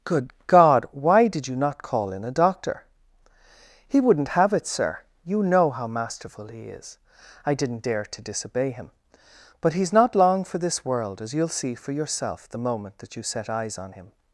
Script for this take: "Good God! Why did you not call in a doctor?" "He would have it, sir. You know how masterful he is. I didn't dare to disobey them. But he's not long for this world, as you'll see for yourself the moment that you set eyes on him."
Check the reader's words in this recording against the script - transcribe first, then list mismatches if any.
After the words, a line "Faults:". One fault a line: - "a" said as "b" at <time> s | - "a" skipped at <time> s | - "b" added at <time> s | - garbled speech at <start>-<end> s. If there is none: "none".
"Good God! Why did you not call in a doctor?" "He wouldn't have it, sir. You know how masterful he is. I didn't dare to disobey him. But he's not long for this world, as you'll see for yourself the moment that you set eyes on him."
Faults:
- "would" said as "wouldn't" at 4.0 s
- "them" said as "him" at 8.7 s